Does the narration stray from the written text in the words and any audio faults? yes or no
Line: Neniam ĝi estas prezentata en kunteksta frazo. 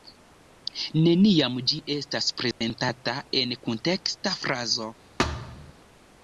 yes